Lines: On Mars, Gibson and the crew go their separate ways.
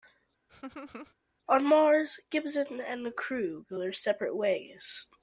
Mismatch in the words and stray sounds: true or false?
true